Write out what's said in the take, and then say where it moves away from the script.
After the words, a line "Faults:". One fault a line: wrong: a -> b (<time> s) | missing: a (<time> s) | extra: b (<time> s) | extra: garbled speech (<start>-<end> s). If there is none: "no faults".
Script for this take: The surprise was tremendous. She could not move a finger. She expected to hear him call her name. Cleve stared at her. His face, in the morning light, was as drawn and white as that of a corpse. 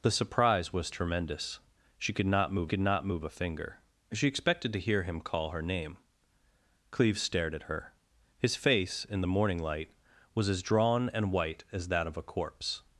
The surprise was tremendous. She could not move could not move a finger. She expected to hear him call her name. Cleve stared at her. His face, in the morning light, was as drawn and white as that of a corpse.
Faults:
extra: could not move (2.7 s)